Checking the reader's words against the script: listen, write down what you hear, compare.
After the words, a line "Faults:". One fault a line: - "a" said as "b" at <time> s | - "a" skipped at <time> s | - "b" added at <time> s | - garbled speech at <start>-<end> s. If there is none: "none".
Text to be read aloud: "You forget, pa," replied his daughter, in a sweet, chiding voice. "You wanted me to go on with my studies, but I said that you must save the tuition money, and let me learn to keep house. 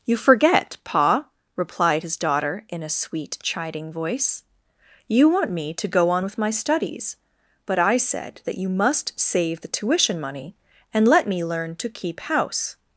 "You forget, pa," replied his daughter, in a sweet, chiding voice. "You want me to go on with my studies, but I said that you must save the tuition money, and let me learn to keep house.
Faults:
- "wanted" said as "want" at 5.3 s